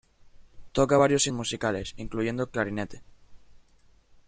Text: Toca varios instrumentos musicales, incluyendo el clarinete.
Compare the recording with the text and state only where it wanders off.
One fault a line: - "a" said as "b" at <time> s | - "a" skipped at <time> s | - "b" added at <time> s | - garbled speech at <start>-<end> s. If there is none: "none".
- "instrumentos" skipped at 1.3 s